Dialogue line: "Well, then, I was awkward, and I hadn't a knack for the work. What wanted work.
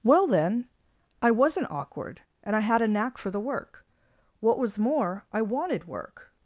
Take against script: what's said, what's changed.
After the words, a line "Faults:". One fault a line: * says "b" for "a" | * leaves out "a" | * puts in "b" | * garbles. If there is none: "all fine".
"Well, then, I wasn't awkward, and I had a knack for the work. What was more, I wanted work.
Faults:
* says "wasn't" for "was"
* says "had" for "hadn't"
* puts in "was more I"